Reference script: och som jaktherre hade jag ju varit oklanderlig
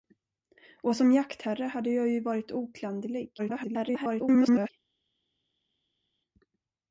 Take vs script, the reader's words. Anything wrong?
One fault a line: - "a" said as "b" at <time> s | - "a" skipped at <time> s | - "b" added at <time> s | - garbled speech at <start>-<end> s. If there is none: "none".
- garbled speech at 3.4-4.7 s